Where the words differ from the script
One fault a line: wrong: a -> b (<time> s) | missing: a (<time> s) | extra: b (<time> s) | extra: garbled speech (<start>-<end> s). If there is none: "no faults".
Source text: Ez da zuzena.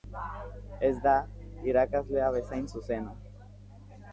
extra: irakaslea bezain (1.7 s)